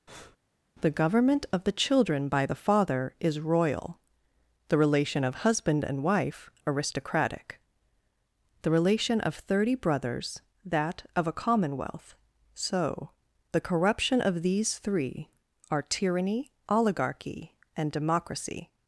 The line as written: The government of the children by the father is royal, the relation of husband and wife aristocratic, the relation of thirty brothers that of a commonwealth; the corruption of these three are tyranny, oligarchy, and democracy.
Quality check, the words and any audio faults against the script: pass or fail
fail